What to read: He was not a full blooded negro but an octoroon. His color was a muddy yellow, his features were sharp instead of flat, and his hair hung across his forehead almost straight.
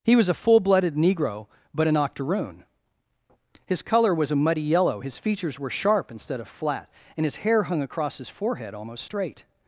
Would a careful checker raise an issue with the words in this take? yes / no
yes